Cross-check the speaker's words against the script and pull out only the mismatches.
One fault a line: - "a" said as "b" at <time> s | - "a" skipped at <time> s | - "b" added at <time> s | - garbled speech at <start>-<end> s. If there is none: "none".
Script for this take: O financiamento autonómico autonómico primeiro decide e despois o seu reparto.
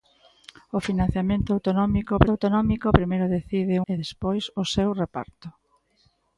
none